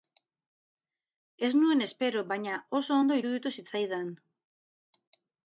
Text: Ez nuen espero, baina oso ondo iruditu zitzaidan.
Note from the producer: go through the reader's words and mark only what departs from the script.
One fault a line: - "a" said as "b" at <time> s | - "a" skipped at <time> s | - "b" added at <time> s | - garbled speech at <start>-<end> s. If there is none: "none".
none